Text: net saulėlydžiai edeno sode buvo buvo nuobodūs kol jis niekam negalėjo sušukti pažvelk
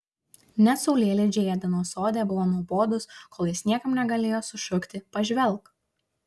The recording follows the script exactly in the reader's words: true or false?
false